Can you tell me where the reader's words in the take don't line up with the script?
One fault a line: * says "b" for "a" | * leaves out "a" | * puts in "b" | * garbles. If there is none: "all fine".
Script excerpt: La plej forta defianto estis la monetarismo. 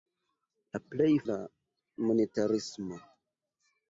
* leaves out "forta defianto estis"